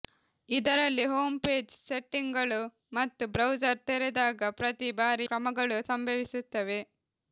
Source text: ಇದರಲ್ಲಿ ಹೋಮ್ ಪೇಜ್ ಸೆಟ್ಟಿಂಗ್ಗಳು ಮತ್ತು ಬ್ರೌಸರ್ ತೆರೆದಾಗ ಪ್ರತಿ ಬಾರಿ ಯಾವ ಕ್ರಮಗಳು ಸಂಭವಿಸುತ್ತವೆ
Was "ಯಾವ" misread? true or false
true